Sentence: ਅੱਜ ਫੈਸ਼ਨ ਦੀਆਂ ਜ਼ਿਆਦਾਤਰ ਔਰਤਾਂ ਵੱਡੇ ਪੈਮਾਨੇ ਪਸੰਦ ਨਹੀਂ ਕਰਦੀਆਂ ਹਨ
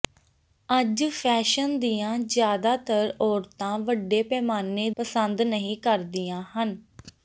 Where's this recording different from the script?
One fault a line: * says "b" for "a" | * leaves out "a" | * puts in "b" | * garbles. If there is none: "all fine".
all fine